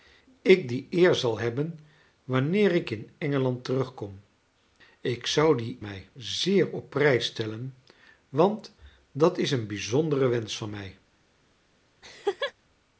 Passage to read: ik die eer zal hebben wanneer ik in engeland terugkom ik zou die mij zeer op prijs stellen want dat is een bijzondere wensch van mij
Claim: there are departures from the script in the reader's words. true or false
false